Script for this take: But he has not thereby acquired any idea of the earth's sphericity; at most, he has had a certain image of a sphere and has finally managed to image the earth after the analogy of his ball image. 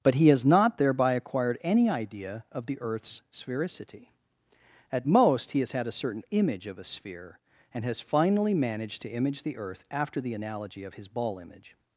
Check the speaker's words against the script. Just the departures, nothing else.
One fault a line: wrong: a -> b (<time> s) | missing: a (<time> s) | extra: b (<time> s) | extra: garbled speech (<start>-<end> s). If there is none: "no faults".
no faults